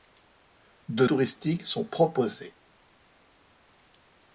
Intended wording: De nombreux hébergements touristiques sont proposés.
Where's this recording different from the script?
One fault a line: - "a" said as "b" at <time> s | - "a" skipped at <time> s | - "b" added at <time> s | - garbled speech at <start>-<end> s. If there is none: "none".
- "nombreux hébergements" skipped at 1.1 s